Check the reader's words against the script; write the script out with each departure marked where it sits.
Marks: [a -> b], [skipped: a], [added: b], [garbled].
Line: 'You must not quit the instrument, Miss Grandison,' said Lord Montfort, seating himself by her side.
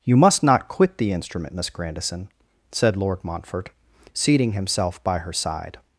'You must not quit the instrument, Miss Grandison,' said Lord Montfort, seating himself by her side.